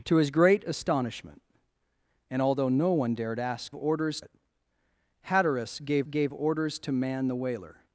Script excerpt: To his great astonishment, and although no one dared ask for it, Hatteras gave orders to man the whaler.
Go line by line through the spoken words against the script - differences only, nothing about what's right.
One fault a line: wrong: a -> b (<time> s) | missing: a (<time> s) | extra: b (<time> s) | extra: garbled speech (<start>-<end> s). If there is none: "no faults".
wrong: for -> orders (3.7 s)
extra: gave (6.0 s)